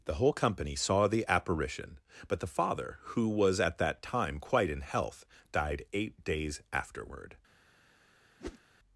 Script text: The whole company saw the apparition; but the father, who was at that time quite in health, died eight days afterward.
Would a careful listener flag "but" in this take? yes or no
no